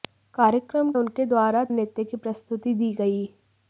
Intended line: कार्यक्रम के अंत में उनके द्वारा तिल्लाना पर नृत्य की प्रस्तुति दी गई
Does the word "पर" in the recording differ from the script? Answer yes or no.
yes